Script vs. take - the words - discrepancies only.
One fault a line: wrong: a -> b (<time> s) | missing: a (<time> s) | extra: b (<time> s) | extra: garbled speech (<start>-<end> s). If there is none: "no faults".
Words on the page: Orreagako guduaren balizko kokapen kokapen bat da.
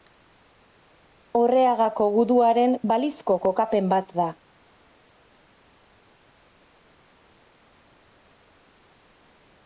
missing: kokapen (3.9 s)